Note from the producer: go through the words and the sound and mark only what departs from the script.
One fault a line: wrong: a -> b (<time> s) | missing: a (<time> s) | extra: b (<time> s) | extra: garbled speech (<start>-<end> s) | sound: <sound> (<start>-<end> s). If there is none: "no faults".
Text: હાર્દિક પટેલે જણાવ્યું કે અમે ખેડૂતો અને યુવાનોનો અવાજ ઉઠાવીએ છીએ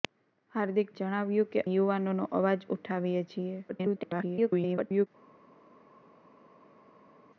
missing: પટેલે (0.9 s)
missing: અમે ખેડૂતો અને (1.6 s)
extra: garbled speech (3.7-5.1 s)